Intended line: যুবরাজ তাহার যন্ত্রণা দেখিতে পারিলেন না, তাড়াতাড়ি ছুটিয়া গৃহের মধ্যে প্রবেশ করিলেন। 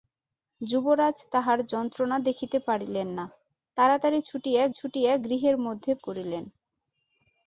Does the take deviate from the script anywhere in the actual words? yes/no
yes